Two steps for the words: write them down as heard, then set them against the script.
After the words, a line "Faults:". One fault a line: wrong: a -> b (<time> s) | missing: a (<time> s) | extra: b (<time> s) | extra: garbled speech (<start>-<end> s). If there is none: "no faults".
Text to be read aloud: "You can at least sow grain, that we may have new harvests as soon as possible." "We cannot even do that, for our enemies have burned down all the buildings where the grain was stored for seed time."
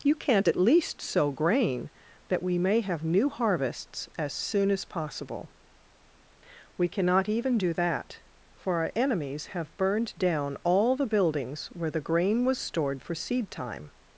"You can't at least sow grain, that we may have new harvests as soon as possible." "We cannot even do that, for our enemies have burned down all the buildings where the grain was stored for seed time."
Faults:
wrong: can -> can't (0.1 s)